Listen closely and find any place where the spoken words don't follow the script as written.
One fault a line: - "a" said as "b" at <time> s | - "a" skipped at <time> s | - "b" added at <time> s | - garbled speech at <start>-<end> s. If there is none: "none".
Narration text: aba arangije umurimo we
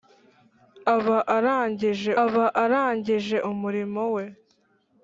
- "aba arangije" added at 2.2 s